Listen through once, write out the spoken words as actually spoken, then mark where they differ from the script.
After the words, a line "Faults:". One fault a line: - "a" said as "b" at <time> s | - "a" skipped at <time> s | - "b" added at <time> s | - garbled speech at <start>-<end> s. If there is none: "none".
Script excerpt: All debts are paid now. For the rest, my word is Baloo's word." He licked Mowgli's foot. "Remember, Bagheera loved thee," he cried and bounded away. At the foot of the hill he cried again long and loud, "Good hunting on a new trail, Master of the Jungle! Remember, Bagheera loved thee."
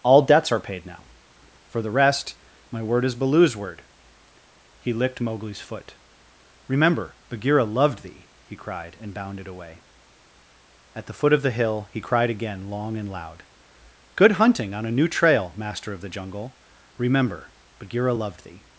All debts are paid now. For the rest, my word is Baloo's word." He licked Mowgli's foot. "Remember, Bagheera loved thee," he cried and bounded away. At the foot of the hill he cried again long and loud, "Good hunting on a new trail, Master of the Jungle! Remember, Bagheera loved thee."
Faults:
none